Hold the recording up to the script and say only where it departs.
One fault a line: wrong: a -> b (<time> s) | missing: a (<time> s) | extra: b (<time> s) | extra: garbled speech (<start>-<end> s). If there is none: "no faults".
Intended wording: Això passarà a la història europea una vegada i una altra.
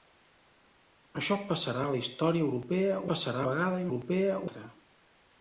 wrong: una -> passarà (3.1 s)
wrong: una -> europea (3.9 s)